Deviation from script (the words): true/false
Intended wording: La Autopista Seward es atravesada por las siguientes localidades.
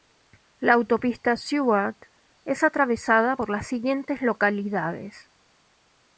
false